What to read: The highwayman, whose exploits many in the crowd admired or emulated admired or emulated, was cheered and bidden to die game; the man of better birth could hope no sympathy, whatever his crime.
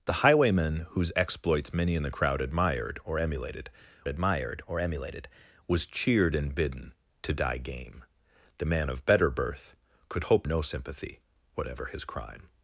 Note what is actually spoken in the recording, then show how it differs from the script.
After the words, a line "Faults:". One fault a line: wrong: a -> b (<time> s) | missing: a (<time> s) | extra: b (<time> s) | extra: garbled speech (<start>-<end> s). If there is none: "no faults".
The highwayman, whose exploits many in the crowd admired or emulated admired or emulated, was cheered and bidden to die game; the man of better birth could hope no sympathy, whatever his crime.
Faults:
no faults